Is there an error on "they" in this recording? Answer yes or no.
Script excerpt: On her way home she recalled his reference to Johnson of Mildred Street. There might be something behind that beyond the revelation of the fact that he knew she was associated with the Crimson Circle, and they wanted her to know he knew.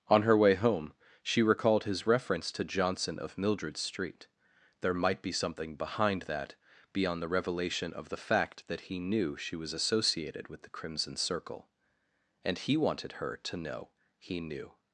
yes